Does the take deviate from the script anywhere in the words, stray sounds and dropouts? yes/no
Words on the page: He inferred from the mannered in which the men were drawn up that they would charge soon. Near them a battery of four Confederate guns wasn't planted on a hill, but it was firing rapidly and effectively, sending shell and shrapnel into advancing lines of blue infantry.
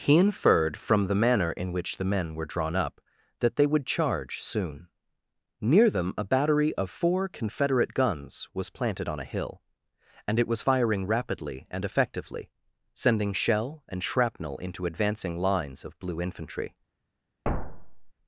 yes